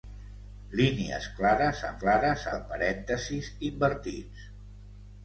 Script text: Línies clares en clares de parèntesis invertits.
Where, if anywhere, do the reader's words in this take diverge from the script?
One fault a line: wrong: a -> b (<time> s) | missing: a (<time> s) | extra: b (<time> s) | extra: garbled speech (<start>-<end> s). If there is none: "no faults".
no faults